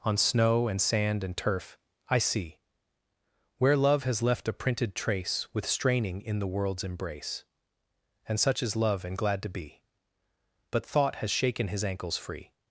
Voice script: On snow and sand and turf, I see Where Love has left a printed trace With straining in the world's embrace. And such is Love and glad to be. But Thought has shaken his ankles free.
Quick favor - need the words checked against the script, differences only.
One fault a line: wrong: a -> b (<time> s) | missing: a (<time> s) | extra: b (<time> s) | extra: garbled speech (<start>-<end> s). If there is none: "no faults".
no faults